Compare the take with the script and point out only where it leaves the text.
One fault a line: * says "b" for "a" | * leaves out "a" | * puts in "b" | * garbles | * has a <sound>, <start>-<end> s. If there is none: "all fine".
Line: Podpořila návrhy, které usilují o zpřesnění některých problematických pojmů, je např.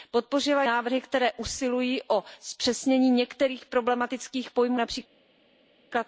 all fine